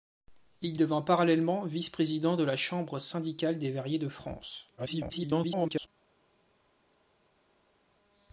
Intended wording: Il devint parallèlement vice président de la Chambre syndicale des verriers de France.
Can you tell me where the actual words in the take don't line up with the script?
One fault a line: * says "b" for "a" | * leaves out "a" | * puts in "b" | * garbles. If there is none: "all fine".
* garbles